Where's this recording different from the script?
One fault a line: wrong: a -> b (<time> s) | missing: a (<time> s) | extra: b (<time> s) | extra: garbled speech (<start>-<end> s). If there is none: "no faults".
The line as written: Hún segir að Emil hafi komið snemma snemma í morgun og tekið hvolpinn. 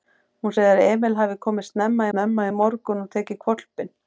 no faults